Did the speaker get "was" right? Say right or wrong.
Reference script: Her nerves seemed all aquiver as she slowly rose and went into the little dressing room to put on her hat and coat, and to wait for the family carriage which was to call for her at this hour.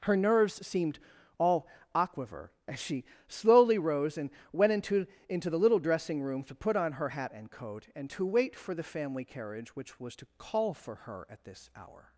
right